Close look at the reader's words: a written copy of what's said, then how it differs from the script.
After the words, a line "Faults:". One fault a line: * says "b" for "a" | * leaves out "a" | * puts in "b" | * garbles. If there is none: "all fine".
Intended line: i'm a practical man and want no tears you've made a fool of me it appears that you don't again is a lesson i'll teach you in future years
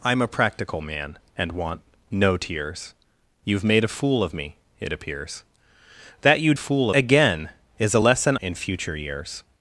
i'm a practical man and want no tears you've made a fool of me it appears that you fool again is a lesson in future years
Faults:
* says "fool" for "don't"
* leaves out "i'll teach you"